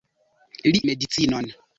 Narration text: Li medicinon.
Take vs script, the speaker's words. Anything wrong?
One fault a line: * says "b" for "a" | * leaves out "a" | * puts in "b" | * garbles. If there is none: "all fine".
all fine